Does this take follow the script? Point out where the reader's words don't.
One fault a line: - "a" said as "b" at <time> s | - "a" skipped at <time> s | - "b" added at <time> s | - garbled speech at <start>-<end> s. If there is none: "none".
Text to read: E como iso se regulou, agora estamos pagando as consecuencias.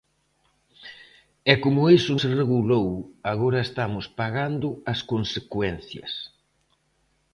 none